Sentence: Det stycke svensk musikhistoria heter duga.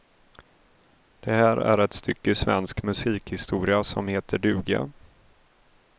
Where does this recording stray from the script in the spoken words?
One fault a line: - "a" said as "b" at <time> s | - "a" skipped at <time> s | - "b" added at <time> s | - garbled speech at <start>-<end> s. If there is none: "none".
- "här är ett" added at 1.3 s
- "som" added at 3.8 s